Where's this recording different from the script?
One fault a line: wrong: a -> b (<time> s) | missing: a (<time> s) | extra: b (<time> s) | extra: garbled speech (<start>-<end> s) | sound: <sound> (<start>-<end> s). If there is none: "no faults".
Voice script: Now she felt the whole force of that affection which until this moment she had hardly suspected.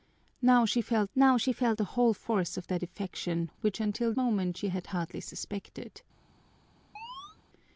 extra: now she felt (1.1 s)
missing: this (4.1 s)
sound: chirp (7.0-7.4 s)